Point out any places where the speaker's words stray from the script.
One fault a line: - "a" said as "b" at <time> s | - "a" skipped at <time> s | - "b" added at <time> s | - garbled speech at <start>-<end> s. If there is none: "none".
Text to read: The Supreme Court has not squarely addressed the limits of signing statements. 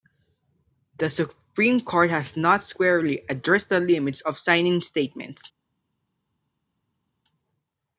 none